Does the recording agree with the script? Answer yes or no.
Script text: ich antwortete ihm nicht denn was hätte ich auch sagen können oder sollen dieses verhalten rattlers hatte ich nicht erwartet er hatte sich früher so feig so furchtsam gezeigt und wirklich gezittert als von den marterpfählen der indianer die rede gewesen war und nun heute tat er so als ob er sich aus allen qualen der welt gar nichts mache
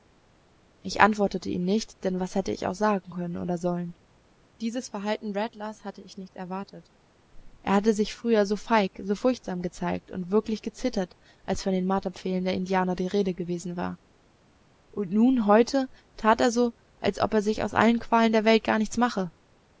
yes